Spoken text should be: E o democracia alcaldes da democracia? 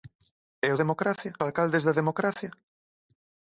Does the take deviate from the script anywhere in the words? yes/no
no